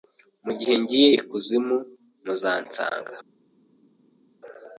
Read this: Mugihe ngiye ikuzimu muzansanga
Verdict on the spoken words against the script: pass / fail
pass